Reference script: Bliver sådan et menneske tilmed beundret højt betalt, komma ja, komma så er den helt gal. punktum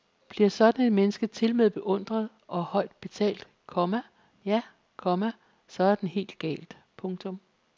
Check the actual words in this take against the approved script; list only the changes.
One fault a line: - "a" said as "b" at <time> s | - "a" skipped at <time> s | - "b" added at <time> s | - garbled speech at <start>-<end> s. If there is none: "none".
- "og" added at 2.5 s